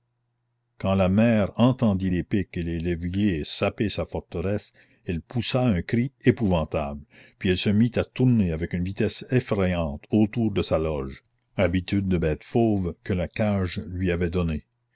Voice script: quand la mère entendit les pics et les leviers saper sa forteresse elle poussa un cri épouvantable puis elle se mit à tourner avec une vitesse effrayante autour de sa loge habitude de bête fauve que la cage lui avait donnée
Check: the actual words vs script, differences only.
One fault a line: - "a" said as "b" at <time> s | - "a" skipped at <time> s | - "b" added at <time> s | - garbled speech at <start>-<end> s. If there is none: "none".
none